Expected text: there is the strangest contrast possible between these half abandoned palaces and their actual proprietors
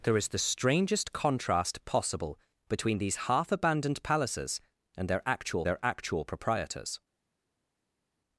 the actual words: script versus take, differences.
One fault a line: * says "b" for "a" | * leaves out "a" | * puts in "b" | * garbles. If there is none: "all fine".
* puts in "their actual"